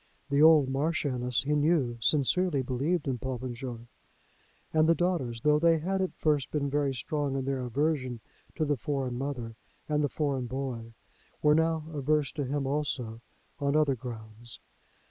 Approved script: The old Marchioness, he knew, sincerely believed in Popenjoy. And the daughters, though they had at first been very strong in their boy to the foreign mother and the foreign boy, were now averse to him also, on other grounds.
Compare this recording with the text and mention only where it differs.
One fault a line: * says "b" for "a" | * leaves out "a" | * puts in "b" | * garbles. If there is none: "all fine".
* says "aversion" for "boy"